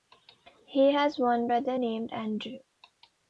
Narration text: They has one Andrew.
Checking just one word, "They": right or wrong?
wrong